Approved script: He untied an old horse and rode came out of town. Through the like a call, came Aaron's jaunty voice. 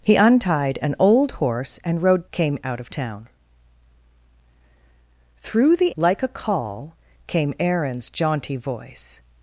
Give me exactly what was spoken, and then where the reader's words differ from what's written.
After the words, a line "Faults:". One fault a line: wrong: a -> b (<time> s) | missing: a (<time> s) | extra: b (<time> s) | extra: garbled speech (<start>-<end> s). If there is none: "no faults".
He untied an old horse and rode came out of town. Through the like a call, came Aaron's jaunty voice.
Faults:
no faults